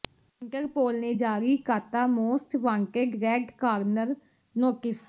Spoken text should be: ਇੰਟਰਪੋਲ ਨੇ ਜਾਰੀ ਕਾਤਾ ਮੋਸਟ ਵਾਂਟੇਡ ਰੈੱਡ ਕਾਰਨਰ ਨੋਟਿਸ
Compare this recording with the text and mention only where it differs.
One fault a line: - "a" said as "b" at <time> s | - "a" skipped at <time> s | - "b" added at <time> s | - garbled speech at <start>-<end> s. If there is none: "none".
none